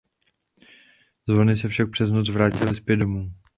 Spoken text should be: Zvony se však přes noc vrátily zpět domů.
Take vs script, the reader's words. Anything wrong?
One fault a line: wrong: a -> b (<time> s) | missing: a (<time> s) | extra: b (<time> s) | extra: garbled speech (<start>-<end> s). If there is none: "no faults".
no faults